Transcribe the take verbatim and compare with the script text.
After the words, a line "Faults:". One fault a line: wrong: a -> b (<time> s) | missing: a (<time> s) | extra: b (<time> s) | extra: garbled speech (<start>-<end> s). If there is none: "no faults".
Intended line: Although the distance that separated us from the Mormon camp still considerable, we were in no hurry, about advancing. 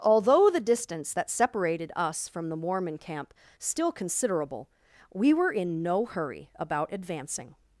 Although the distance that separated us from the Mormon camp still considerable, we were in no hurry, about advancing.
Faults:
no faults